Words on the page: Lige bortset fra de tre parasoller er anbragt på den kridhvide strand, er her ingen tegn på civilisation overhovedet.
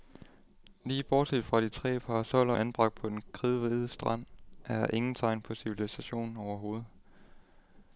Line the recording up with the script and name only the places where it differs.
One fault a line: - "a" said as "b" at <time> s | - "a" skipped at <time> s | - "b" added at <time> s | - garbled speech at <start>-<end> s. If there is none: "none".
none